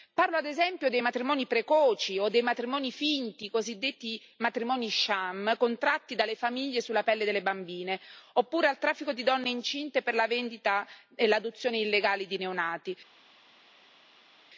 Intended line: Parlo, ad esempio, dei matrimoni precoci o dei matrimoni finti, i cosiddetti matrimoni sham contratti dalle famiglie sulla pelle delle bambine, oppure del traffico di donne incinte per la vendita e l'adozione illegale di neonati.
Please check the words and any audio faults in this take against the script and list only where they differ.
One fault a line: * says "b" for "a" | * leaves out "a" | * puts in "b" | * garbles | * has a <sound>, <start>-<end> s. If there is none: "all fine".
all fine